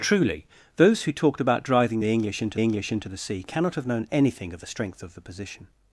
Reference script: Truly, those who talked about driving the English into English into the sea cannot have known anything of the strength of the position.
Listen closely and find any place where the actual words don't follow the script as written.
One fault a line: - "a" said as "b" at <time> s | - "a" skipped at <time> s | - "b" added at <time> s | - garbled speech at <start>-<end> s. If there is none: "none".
none